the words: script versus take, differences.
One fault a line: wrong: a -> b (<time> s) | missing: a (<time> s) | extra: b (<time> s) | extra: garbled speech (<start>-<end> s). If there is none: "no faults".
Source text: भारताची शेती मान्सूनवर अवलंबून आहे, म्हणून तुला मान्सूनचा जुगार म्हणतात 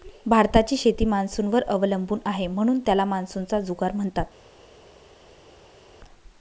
wrong: तुला -> त्याला (2.9 s)